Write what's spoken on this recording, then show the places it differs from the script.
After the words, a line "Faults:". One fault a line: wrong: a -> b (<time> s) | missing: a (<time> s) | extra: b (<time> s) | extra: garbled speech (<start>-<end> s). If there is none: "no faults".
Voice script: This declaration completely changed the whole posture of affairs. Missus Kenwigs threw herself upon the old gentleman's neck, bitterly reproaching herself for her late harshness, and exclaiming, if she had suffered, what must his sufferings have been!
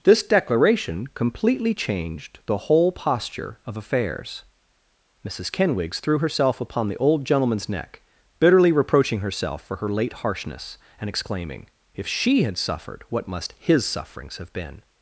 This declaration completely changed the whole posture of affairs. Missus Kenwigs threw herself upon the old gentleman's neck, bitterly reproaching herself for her late harshness, and exclaiming, if she had suffered, what must his sufferings have been!
Faults:
no faults